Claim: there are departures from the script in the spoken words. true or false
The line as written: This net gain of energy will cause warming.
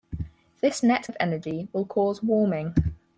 true